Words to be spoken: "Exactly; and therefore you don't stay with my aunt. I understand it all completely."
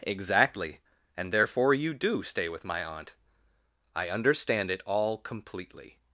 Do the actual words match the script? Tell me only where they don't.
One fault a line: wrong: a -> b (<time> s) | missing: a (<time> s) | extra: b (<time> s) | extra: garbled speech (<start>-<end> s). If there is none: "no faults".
wrong: don't -> do (1.9 s)